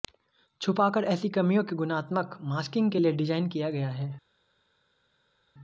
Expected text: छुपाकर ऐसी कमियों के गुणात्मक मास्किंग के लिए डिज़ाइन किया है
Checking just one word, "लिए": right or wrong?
right